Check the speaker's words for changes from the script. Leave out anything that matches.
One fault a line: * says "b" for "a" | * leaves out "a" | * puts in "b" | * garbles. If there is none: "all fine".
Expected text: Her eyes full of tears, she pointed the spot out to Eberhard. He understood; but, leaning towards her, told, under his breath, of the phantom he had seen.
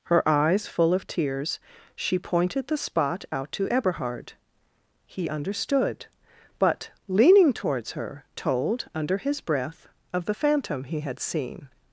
all fine